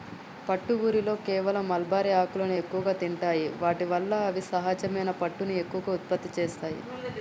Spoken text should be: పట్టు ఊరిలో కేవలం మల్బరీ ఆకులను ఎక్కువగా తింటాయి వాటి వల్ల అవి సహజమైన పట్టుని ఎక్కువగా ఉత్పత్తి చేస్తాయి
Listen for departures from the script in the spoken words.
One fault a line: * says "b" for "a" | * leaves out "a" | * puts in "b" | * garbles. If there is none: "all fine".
all fine